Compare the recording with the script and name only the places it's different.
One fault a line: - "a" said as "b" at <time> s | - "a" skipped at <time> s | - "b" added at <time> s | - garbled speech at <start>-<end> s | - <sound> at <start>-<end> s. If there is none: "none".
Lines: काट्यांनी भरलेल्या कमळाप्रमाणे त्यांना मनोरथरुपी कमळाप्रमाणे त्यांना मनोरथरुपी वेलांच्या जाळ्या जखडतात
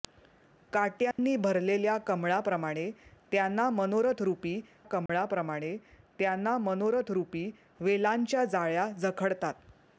- dropout at 1.1-1.2 s
- dropout at 5.1-5.1 s